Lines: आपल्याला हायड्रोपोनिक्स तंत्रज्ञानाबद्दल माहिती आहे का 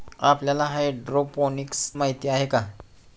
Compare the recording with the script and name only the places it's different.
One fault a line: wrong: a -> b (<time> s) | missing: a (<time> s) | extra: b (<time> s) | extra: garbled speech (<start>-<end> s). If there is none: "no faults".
missing: तंत्रज्ञानाबद्दल (1.9 s)